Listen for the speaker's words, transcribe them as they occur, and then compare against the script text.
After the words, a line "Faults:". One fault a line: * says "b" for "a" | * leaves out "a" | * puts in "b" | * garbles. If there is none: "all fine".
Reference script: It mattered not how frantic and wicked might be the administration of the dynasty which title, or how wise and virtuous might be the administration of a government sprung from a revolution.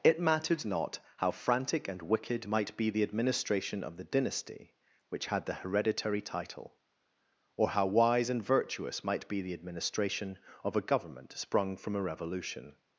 It mattered not how frantic and wicked might be the administration of the dynasty which had the hereditary title, or how wise and virtuous might be the administration of a government sprung from a revolution.
Faults:
* puts in "had the hereditary"